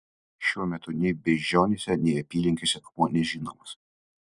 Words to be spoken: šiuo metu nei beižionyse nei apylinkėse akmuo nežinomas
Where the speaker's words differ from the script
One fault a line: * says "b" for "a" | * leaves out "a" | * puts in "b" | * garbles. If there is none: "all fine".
all fine